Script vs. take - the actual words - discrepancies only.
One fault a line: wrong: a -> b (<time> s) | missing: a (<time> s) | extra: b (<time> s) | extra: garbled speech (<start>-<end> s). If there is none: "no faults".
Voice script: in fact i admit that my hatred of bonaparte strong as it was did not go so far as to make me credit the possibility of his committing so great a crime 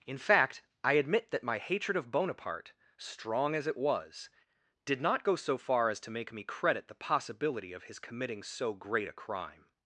no faults